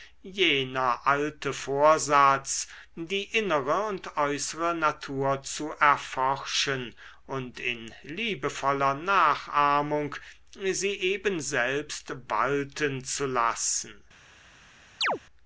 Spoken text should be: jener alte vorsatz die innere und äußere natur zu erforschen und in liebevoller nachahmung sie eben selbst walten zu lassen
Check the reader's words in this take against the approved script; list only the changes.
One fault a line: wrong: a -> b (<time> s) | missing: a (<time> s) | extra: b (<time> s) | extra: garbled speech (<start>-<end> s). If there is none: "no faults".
no faults